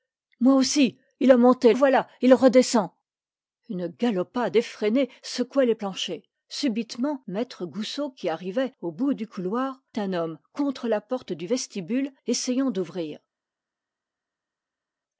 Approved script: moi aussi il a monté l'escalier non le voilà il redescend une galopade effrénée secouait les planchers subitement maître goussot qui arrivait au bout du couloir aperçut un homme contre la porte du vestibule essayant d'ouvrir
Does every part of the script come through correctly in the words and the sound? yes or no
no